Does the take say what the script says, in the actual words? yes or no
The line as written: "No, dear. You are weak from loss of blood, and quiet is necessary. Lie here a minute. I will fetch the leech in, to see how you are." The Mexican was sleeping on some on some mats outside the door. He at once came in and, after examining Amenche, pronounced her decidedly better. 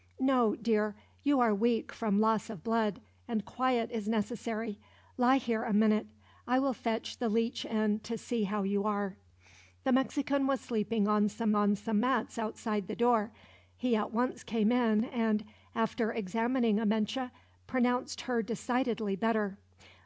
yes